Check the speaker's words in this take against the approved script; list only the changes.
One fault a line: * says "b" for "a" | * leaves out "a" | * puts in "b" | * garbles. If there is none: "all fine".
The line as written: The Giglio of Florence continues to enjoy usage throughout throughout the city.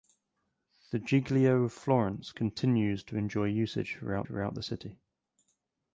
all fine